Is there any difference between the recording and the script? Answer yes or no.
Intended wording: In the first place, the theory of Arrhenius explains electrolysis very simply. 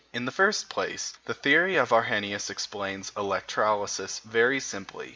no